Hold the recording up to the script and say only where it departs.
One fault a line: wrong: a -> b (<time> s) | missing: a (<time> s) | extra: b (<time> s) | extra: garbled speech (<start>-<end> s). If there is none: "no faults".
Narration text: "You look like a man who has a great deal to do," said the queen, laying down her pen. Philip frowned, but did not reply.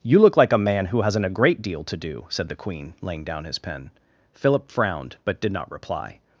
wrong: has -> hasn't (1.0 s)
wrong: her -> his (3.4 s)